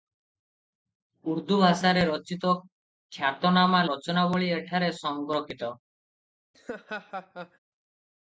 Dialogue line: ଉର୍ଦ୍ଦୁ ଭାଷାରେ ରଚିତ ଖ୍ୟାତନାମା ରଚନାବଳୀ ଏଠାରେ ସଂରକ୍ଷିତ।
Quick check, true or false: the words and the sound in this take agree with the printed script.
false